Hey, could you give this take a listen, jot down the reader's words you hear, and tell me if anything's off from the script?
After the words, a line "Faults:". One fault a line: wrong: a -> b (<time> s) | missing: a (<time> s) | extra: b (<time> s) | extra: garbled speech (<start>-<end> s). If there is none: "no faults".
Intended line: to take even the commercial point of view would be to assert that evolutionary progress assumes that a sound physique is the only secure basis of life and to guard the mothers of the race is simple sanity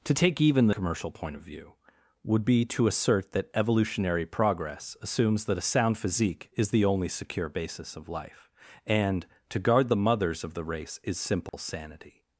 to take even the commercial point of view would be to assert that evolutionary progress assumes that a sound physique is the only secure basis of life and to guard the mothers of the race is simple sanity
Faults:
no faults